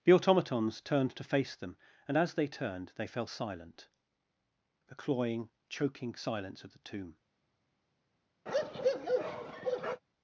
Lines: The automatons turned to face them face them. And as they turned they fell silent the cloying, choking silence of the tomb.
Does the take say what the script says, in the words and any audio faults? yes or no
no